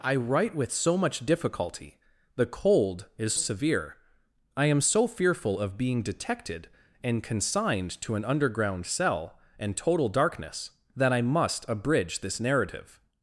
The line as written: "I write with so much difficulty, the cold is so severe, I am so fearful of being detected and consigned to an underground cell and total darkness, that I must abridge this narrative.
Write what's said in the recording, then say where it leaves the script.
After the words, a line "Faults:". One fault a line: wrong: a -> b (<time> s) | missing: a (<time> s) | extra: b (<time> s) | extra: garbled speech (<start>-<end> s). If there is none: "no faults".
"I write with so much difficulty, the cold is severe, I am so fearful of being detected and consigned to an underground cell and total darkness, that I must abridge this narrative.
Faults:
missing: so (3.4 s)